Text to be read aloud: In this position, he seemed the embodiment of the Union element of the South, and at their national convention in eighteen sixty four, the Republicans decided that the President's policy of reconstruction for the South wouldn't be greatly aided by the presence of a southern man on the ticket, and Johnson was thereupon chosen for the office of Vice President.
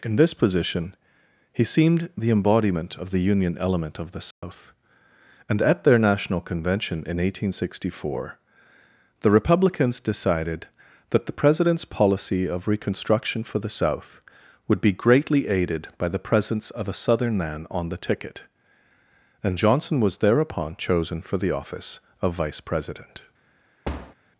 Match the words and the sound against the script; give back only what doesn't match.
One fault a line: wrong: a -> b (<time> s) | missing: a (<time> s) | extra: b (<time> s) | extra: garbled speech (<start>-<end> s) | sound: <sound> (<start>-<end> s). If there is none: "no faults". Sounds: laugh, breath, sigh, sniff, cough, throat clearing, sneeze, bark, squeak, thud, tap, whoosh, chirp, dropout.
sound: dropout (4.3-4.4 s)
wrong: wouldn't -> would (14.7 s)
sound: thud (23.8-24.1 s)